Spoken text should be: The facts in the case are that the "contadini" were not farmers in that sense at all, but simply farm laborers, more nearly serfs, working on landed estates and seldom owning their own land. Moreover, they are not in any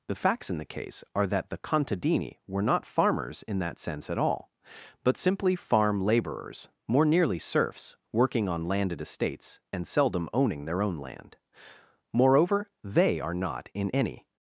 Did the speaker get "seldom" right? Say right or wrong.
right